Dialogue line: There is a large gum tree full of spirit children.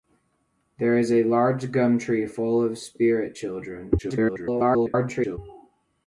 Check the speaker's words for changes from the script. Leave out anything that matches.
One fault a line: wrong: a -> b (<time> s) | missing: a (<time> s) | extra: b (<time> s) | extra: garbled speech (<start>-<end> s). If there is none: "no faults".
extra: garbled speech (4.0-5.4 s)